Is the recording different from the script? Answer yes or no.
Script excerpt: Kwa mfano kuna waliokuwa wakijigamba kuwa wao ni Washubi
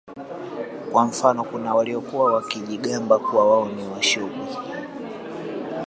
no